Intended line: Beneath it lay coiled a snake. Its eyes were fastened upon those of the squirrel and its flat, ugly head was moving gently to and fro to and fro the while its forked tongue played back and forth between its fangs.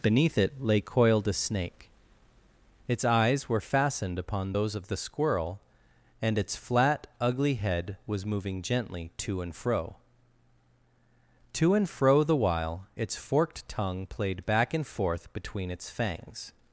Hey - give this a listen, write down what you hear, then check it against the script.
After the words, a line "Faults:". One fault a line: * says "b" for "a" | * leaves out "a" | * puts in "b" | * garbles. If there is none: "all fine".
Beneath it lay coiled a snake. Its eyes were fastened upon those of the squirrel and its flat, ugly head was moving gently to and fro to and fro the while its forked tongue played back and forth between its fangs.
Faults:
all fine